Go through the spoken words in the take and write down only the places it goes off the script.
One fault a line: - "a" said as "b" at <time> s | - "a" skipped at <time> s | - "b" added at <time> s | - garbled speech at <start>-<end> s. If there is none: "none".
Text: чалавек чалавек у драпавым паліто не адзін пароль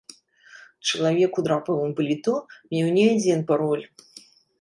- "чалавек" skipped at 1.3 s
- "меў" added at 2.7 s